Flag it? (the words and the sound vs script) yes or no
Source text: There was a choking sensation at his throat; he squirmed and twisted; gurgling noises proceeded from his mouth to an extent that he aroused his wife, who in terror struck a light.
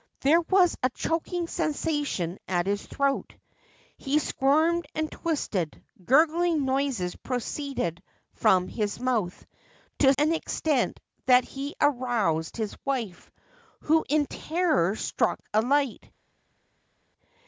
no